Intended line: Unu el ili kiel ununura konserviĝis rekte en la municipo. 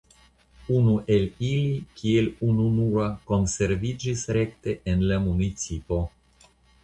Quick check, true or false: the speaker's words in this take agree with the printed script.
true